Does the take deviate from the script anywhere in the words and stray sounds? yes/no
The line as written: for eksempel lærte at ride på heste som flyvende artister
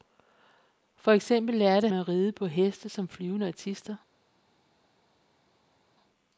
no